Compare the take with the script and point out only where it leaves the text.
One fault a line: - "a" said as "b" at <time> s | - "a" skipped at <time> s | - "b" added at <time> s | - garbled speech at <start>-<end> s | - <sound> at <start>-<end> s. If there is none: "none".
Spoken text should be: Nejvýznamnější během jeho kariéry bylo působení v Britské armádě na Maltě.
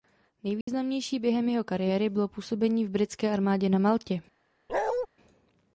- dropout at 0.6-0.7 s
- bark at 4.7-5.1 s